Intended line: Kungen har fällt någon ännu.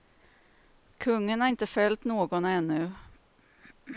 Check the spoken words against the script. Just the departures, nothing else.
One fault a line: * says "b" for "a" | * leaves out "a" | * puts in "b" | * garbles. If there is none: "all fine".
* puts in "inte"